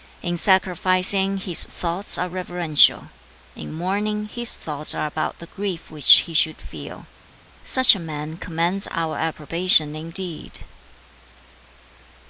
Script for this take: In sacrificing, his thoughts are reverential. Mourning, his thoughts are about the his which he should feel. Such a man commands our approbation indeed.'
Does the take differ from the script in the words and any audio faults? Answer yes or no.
yes